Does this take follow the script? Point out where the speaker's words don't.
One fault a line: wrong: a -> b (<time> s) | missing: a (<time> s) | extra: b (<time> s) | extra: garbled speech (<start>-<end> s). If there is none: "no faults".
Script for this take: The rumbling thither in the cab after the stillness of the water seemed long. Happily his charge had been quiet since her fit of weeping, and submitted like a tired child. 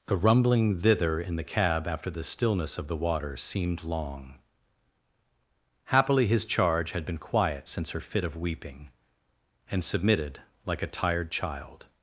no faults